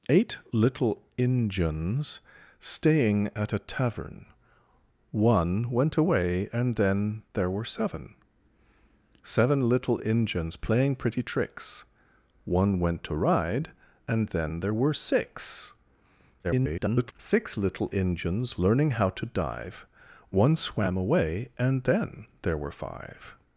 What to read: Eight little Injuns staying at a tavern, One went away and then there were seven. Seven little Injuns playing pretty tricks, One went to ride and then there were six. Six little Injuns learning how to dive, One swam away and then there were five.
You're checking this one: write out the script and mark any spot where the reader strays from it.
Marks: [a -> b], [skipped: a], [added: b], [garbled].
Eight little Injuns staying at a tavern, One went away and then there were seven. Seven little Injuns playing pretty tricks, One went to ride and then there were six. [garbled] Six little Injuns learning how to dive, One swam away and then there were five.